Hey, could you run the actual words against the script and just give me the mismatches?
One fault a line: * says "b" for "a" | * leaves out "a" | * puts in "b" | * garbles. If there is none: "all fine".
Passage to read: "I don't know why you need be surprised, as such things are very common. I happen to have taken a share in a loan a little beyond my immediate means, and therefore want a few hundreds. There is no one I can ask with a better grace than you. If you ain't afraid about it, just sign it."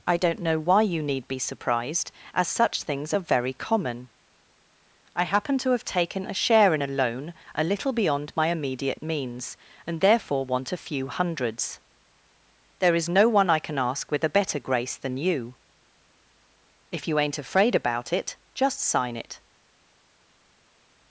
all fine